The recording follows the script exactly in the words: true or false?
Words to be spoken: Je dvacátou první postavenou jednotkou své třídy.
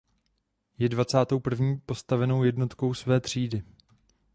true